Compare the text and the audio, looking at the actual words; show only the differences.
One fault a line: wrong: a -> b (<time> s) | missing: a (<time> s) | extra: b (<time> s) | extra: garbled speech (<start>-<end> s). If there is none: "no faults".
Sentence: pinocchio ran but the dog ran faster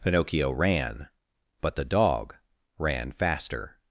no faults